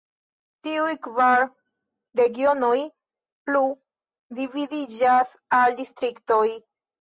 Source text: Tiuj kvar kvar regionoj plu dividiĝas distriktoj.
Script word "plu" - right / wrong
right